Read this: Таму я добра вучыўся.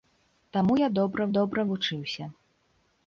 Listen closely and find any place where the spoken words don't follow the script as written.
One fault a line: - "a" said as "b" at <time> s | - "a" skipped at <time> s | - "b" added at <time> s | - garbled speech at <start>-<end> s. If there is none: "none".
- "добра" added at 1.4 s